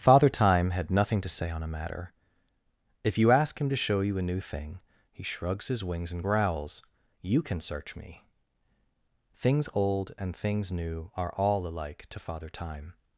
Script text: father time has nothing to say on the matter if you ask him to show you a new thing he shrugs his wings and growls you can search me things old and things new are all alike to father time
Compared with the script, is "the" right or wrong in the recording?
wrong